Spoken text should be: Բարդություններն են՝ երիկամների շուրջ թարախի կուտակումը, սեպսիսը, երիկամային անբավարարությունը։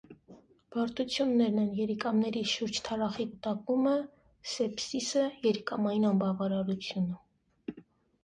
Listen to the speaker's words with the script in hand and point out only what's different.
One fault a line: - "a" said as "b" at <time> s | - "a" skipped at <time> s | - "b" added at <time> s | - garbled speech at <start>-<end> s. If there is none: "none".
none